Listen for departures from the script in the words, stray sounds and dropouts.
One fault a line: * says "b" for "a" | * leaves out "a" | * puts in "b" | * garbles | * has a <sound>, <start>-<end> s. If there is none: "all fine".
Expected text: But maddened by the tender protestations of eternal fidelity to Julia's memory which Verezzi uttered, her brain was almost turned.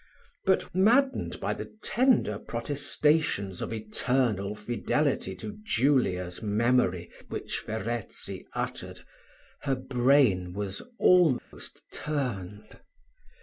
* has a dropout, 11.4-11.5 s